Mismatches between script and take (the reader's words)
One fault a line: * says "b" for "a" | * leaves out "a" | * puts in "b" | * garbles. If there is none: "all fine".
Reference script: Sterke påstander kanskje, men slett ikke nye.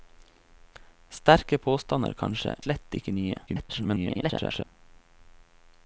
* leaves out "men"
* garbles